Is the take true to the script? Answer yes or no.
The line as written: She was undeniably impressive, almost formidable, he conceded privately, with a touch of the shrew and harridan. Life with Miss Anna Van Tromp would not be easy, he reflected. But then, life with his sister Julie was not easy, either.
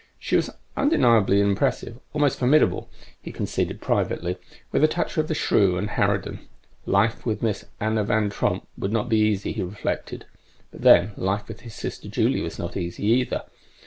yes